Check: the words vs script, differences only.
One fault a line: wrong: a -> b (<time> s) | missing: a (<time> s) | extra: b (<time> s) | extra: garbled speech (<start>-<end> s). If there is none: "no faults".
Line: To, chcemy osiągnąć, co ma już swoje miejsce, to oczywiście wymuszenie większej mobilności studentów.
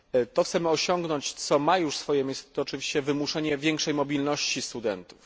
no faults